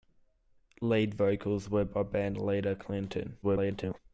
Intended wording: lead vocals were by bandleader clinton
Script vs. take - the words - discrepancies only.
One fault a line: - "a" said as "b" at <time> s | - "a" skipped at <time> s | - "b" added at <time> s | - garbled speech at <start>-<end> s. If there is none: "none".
- garbled speech at 3.4-4.0 s